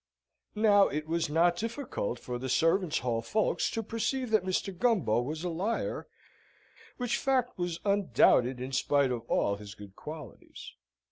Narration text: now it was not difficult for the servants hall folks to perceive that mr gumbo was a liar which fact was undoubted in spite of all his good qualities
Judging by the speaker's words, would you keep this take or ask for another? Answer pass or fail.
pass